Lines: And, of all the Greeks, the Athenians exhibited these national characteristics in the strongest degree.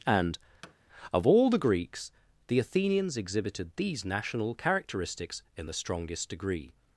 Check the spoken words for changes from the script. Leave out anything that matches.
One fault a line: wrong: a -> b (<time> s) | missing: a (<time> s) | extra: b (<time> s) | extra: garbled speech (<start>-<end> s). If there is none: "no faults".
no faults